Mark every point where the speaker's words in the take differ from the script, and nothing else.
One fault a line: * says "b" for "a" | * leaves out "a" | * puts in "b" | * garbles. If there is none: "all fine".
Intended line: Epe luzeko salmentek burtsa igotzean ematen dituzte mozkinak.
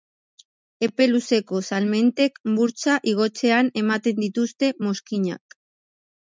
all fine